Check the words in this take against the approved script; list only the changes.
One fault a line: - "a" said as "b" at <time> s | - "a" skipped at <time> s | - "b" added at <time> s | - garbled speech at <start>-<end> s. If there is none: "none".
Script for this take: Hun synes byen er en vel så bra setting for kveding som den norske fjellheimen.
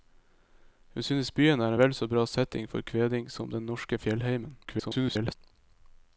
- garbled speech at 4.6-5.3 s